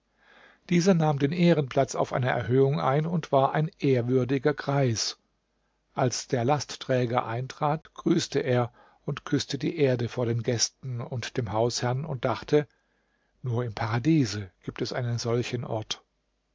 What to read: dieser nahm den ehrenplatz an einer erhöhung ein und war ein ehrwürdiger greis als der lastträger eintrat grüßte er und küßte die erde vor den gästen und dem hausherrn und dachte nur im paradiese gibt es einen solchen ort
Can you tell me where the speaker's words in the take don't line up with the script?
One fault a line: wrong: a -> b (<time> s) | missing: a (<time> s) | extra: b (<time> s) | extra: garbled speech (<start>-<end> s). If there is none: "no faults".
wrong: an -> auf (1.9 s)